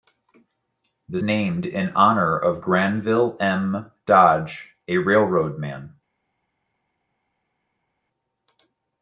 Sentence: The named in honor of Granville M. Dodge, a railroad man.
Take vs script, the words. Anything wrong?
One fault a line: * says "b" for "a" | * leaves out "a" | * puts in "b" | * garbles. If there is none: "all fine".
all fine